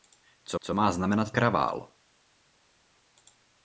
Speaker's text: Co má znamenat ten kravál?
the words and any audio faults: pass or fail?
fail